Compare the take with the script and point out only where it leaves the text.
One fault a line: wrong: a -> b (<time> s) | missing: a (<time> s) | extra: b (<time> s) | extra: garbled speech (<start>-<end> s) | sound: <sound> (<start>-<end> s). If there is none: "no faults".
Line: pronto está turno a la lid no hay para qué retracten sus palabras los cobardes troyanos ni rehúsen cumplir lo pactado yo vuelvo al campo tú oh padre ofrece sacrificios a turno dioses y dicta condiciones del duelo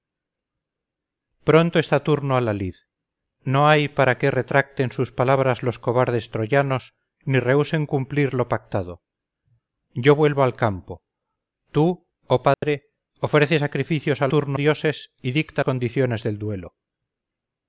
sound: dropout (12.5-12.6 s)